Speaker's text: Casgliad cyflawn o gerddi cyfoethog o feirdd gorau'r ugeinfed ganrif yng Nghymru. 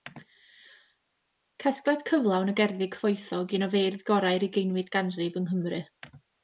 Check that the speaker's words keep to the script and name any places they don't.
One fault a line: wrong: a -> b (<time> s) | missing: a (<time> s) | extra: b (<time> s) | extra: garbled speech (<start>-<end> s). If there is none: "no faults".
extra: un (3.6 s)